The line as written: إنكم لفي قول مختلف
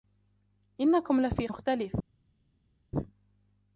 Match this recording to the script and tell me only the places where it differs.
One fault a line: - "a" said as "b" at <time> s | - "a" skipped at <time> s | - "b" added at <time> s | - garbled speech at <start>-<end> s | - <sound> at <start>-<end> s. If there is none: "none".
- "قول" skipped at 1.5 s